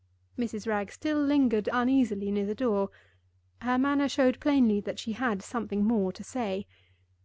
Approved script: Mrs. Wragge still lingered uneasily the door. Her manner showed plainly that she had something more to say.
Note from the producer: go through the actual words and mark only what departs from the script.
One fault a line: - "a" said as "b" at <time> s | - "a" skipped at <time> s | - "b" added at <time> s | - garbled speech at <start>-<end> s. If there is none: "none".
- "near" added at 2.3 s